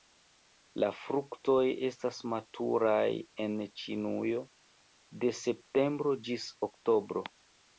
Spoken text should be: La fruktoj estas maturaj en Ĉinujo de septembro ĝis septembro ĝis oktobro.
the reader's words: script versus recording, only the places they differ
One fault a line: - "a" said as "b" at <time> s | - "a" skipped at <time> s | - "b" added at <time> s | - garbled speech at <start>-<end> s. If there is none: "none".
- "septembro ĝis" skipped at 6.5 s